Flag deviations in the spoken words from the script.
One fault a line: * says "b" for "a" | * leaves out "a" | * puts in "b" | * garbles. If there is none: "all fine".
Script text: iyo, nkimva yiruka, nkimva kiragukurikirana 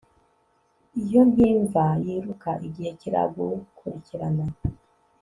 * says "igihe" for "nkimva"